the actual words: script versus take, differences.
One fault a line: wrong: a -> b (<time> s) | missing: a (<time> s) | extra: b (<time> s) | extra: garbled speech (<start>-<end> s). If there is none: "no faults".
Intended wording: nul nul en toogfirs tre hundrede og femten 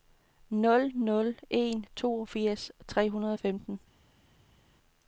no faults